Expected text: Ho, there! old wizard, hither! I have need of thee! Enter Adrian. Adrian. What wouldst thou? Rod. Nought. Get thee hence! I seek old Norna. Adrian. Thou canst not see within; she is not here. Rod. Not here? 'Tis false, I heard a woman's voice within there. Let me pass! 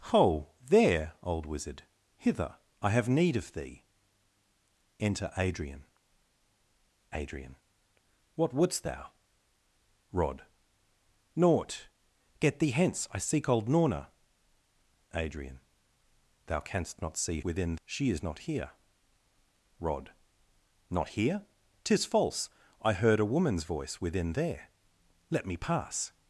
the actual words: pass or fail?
pass